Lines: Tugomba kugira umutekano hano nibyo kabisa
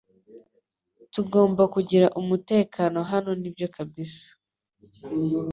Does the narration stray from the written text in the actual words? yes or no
no